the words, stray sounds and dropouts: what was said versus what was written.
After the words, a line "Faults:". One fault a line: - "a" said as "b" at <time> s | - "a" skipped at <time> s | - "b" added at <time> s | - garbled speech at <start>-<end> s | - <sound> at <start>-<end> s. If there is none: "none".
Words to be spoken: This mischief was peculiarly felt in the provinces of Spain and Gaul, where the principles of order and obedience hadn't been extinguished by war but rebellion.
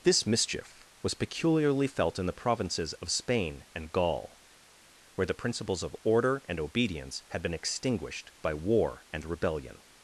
This mischief was peculiarly felt in the provinces of Spain and Gaul, where the principles of order and obedience had been extinguished by war and rebellion.
Faults:
- "hadn't" said as "had" at 7.3 s
- "but" said as "and" at 9.1 s